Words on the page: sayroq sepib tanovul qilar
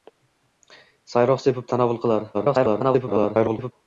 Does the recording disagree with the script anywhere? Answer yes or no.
yes